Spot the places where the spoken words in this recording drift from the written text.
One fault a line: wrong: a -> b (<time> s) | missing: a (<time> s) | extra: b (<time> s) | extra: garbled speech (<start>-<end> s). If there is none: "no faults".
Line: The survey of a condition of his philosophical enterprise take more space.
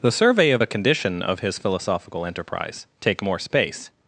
no faults